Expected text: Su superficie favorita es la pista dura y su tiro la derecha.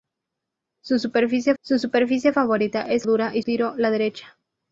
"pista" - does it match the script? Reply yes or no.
no